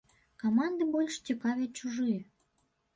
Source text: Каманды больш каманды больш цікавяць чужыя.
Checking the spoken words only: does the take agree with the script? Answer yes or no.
no